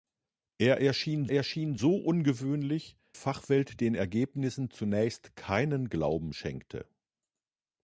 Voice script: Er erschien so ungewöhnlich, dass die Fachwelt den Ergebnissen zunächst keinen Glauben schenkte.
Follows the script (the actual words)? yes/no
no